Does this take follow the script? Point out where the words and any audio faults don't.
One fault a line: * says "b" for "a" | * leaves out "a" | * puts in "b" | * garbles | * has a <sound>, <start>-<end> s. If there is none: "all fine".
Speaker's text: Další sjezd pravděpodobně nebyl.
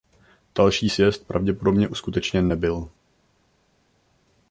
* puts in "uskutečněn"